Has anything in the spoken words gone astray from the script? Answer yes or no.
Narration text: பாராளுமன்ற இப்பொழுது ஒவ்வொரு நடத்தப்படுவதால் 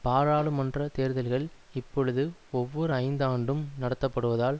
yes